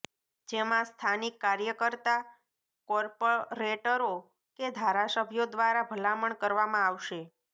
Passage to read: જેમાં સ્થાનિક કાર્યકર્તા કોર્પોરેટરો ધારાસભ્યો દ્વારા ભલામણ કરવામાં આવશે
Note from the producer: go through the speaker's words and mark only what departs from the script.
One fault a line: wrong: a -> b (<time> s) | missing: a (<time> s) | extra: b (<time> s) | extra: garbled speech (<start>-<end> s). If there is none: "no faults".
extra: કે (4.6 s)